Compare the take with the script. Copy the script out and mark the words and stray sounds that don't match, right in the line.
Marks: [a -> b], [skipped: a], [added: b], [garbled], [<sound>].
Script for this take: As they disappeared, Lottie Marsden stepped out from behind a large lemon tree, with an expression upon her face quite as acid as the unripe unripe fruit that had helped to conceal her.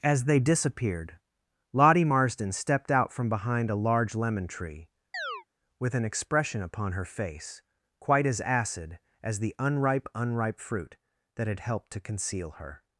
As they disappeared, Lottie Marsden stepped out from behind a large lemon tree, [chirp] with an expression upon her face quite as acid as the unripe unripe fruit that had helped to conceal her.